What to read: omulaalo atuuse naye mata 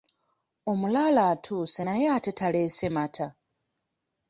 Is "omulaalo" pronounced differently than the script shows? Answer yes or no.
no